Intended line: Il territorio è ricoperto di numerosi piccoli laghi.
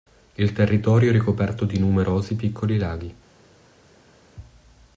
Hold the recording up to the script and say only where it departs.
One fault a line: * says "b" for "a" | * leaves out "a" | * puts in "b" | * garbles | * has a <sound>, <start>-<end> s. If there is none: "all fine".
all fine